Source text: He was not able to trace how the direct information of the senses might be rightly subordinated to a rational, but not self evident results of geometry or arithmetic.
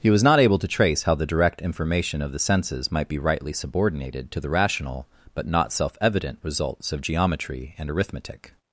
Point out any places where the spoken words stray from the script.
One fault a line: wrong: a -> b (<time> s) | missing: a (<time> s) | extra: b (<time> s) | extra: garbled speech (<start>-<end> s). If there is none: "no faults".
wrong: a -> the (4.4 s)
wrong: or -> and (7.8 s)